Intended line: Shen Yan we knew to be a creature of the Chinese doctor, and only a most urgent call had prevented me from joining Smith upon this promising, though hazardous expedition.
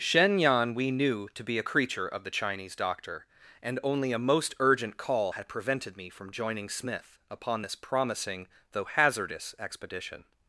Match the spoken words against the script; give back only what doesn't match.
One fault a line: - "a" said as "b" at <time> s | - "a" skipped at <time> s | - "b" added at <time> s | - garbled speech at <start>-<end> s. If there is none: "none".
none